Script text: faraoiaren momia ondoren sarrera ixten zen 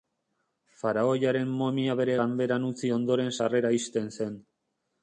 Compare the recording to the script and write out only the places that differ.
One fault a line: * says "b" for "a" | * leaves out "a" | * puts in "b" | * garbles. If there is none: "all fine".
* puts in "bere ganberan utzi"